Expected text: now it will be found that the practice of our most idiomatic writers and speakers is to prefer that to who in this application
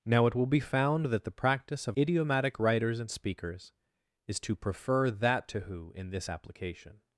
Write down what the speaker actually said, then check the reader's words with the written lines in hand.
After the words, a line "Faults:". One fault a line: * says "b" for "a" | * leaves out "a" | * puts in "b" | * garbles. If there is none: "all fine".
now it will be found that the practice of idiomatic writers and speakers is to prefer that to who in this application
Faults:
* leaves out "our most"